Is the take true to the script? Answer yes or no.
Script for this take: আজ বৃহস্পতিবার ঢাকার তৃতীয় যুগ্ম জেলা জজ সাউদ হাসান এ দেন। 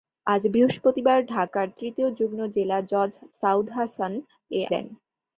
yes